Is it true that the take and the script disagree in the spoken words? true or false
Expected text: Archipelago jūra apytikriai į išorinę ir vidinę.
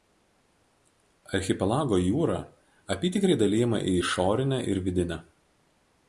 true